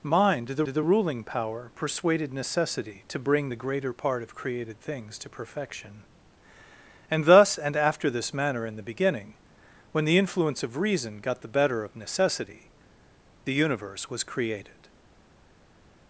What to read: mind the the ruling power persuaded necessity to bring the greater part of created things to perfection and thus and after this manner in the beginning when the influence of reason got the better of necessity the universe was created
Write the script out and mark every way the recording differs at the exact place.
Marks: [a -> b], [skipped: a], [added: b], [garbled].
mind the the ruling power persuaded necessity to bring the greater part of created things to perfection and thus and after this manner in the beginning when the influence of reason got the better of necessity the universe was created